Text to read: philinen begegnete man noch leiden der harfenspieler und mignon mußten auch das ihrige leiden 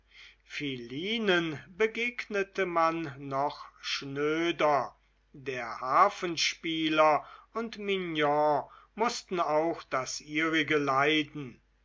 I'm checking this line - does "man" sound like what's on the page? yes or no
yes